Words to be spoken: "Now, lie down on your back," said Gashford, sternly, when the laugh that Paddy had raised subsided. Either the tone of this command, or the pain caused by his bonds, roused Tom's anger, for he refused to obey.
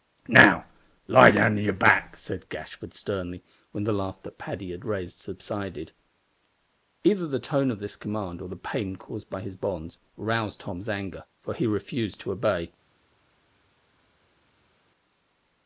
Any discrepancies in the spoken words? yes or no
no